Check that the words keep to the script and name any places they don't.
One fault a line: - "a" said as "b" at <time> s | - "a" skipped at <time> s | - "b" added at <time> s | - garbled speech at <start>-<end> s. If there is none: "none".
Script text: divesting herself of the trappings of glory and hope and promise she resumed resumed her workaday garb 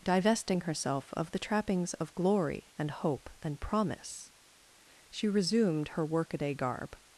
- "resumed" skipped at 5.9 s